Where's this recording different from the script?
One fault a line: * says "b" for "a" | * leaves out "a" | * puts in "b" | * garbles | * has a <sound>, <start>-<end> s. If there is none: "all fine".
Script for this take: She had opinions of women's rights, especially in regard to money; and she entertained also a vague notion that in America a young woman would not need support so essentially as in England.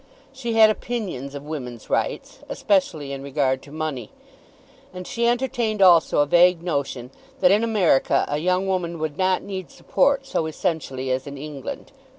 all fine